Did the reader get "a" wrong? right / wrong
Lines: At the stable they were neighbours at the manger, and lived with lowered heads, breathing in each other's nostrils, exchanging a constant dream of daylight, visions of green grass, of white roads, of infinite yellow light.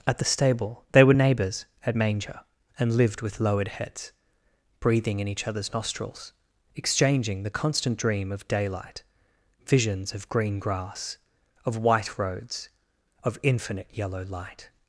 wrong